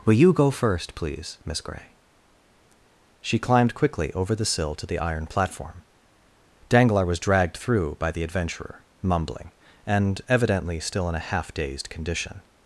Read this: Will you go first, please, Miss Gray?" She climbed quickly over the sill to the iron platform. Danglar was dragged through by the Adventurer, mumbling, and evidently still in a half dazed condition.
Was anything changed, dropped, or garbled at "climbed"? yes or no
no